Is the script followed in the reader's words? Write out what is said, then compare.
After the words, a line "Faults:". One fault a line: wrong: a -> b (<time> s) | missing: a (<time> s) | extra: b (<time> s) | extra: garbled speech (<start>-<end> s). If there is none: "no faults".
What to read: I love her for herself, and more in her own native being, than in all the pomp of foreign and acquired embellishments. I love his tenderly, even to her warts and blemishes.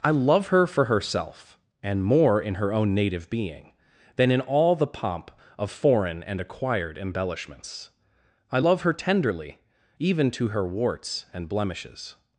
I love her for herself, and more in her own native being, than in all the pomp of foreign and acquired embellishments. I love her tenderly, even to her warts and blemishes.
Faults:
wrong: his -> her (8.8 s)